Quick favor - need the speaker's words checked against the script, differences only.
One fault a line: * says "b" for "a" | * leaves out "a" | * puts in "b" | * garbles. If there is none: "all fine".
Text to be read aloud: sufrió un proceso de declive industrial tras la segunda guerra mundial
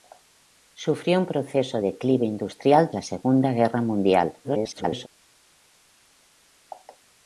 * leaves out "de"
* leaves out "tras"
* garbles